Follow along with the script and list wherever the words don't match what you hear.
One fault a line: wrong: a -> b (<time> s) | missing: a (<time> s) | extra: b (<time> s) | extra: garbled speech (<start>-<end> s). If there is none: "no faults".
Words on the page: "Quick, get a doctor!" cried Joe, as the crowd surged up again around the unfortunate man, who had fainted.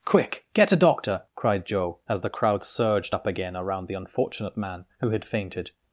no faults